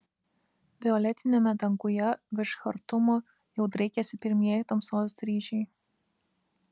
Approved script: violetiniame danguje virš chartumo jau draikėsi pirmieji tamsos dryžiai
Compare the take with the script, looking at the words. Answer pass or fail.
pass